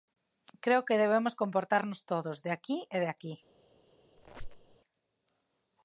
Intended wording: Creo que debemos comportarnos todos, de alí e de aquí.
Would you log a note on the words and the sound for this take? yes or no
yes